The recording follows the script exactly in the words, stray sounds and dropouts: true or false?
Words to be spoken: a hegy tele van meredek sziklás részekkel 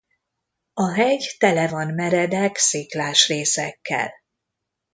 true